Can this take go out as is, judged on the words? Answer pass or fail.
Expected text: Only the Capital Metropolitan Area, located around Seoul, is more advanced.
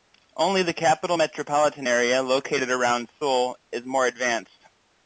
pass